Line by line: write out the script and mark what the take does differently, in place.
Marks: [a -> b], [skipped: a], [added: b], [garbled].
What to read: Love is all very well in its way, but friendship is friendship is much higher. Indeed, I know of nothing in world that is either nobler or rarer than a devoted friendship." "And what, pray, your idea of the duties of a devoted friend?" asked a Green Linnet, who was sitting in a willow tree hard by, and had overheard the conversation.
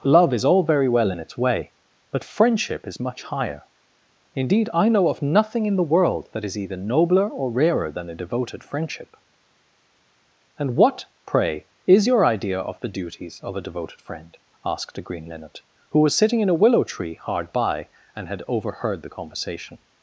Love is all very well in its way, but friendship is [skipped: friendship is] much higher. Indeed, I know of nothing in [added: the] world that is either nobler or rarer than a devoted friendship." "And what, pray, [added: is] your idea of the duties of a devoted friend?" asked a Green Linnet, who was sitting in a willow tree hard by, and had overheard the conversation.